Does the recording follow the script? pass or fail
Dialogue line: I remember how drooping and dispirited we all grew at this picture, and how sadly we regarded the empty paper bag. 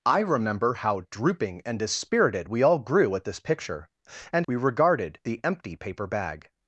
fail